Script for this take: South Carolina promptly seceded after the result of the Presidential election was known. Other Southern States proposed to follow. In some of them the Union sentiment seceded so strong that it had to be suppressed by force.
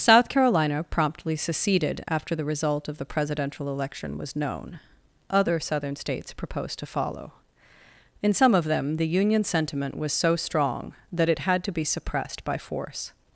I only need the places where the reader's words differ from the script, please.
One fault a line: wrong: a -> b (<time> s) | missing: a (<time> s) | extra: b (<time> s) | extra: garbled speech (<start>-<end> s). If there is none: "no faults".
wrong: seceded -> was (9.9 s)